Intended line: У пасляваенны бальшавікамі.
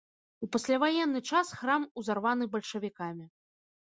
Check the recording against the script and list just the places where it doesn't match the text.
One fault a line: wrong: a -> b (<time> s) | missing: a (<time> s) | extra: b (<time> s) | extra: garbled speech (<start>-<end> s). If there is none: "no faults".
extra: час храм узарваны (1.3 s)